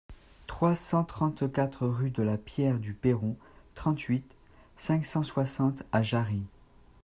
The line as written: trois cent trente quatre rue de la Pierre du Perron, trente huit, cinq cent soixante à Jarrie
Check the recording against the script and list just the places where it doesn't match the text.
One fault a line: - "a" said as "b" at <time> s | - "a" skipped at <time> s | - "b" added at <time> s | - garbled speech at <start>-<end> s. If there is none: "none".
none